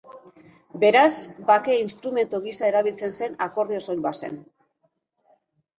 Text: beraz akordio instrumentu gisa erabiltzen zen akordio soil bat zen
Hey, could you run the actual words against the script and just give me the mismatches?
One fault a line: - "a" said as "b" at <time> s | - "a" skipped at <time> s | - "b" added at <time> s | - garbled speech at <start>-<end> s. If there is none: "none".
- "akordio" said as "bake" at 1.5 s